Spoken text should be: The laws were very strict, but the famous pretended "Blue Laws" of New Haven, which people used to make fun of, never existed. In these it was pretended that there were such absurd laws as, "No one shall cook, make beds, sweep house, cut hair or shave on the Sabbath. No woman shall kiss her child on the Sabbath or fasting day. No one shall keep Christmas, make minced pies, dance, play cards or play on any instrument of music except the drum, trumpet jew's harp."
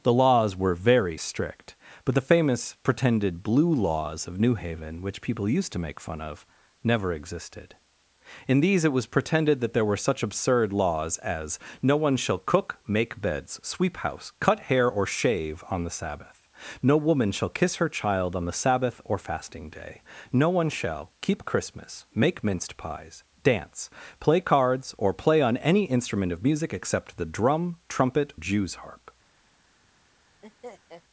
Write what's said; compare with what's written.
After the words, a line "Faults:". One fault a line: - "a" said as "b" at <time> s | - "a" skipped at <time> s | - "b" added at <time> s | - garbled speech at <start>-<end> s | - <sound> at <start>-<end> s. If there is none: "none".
The laws were very strict, but the famous pretended "Blue Laws" of New Haven, which people used to make fun of, never existed. In these it was pretended that there were such absurd laws as, "No one shall cook, make beds, sweep house, cut hair or shave on the Sabbath. No woman shall kiss her child on the Sabbath or fasting day. No one shall keep Christmas, make minced pies, dance, play cards or play on any instrument of music except the drum, trumpet jew's harp."
Faults:
- laugh at 30.4-31.0 s